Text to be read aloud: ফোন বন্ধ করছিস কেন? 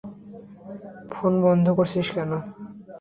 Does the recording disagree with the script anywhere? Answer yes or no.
no